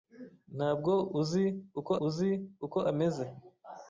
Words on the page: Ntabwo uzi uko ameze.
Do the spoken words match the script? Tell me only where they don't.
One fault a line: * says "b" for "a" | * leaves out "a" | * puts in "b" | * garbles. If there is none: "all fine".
* puts in "uzi uko"